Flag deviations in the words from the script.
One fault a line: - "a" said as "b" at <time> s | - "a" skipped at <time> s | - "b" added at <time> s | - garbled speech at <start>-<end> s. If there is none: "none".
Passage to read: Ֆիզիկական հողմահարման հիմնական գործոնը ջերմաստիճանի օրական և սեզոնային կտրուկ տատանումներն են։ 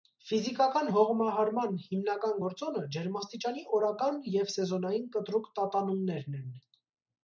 none